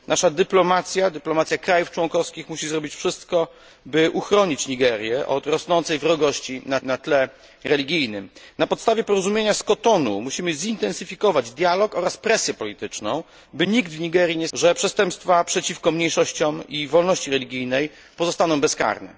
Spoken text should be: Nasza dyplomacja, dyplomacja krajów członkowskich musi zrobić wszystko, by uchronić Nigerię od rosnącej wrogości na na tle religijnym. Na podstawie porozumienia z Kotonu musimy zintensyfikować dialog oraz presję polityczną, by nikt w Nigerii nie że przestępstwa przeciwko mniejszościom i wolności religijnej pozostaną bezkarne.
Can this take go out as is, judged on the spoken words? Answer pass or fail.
pass